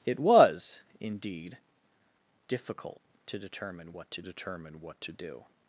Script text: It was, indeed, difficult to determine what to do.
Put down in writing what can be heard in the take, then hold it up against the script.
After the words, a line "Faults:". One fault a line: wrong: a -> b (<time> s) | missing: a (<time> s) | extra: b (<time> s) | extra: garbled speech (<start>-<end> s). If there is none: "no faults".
It was, indeed, difficult to determine what to determine what to do.
Faults:
extra: determine what to (4.2 s)